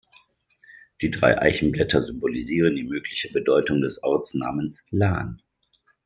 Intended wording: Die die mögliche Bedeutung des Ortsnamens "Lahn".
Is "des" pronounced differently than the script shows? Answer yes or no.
no